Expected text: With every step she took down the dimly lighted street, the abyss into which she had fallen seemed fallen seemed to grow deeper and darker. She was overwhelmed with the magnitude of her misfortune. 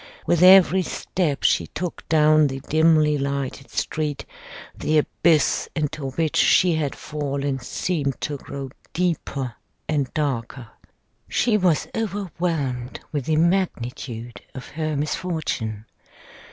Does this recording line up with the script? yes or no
no